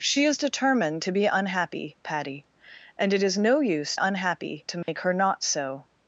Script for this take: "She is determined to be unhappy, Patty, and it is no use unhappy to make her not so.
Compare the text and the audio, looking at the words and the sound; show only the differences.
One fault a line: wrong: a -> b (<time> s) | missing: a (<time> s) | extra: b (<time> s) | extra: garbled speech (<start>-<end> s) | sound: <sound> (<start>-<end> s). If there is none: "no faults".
sound: dropout (4.8-4.9 s)